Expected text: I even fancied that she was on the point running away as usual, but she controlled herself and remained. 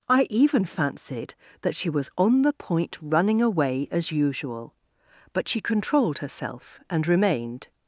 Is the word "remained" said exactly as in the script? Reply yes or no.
yes